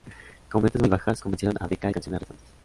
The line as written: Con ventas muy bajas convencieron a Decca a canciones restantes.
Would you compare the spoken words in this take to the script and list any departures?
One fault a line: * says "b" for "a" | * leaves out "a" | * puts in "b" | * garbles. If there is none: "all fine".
all fine